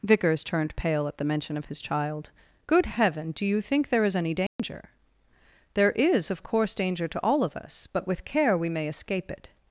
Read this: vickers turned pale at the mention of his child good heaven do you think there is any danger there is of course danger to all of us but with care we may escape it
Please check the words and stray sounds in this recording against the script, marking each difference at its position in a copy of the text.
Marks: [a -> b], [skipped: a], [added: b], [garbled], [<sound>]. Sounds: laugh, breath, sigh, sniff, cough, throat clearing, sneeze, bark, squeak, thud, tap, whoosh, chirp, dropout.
vickers turned pale at the mention of his child good heaven do you think there is any danger [dropout] there is of course danger to all of us but with care we may escape it